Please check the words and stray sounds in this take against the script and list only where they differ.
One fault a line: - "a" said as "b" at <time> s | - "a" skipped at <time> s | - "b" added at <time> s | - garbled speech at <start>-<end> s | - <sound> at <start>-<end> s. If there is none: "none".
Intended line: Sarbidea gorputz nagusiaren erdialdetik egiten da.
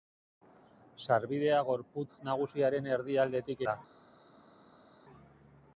- "egiten" skipped at 3.6 s